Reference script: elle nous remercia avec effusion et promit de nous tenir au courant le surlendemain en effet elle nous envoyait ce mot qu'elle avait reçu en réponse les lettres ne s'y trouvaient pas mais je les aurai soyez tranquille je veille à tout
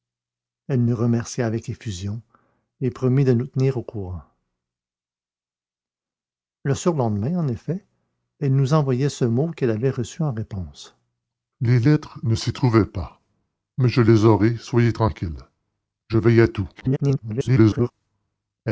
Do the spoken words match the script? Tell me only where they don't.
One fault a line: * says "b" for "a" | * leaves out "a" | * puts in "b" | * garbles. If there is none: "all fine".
* garbles